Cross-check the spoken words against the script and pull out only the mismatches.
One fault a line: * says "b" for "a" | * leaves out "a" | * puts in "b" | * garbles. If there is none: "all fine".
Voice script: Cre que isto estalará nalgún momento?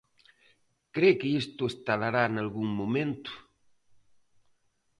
all fine